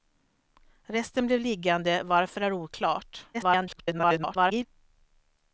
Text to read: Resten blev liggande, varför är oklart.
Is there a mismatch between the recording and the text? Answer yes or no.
yes